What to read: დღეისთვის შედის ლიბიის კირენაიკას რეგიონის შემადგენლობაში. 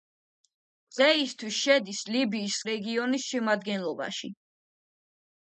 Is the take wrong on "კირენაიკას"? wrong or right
wrong